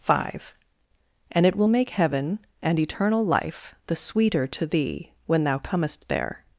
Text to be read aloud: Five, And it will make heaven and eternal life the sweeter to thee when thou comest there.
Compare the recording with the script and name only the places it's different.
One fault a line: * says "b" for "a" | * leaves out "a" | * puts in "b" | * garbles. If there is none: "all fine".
all fine